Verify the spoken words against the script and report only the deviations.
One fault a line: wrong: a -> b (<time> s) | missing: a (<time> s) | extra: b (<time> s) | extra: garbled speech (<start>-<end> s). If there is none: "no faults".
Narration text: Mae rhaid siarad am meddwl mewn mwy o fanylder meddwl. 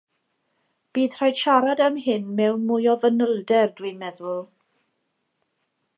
wrong: Mae -> Bydd (1.0 s)
wrong: meddwl -> hyn (2.0 s)
extra: dwi'n (3.8 s)